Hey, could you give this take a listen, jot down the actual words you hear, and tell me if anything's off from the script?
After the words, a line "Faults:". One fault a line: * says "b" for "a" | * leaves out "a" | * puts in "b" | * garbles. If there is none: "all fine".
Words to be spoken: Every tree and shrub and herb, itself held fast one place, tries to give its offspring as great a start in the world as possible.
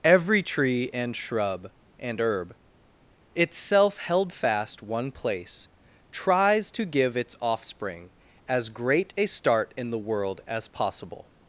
Every tree and shrub and herb, itself held fast one place, tries to give its offspring as great a start in the world as possible.
Faults:
all fine